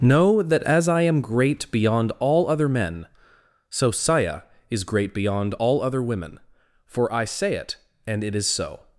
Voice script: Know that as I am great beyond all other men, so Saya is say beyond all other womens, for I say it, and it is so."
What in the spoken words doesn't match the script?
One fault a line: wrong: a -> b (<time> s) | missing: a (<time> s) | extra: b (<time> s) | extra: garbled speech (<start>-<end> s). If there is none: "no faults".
wrong: say -> great (4.9 s)
wrong: womens -> women (6.0 s)